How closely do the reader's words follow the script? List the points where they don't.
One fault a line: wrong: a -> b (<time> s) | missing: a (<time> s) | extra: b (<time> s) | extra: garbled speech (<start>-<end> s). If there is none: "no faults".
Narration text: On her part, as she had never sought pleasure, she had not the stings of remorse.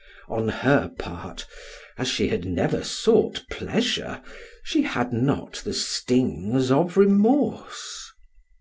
no faults